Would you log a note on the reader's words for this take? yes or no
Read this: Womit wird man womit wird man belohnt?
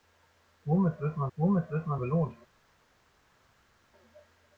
no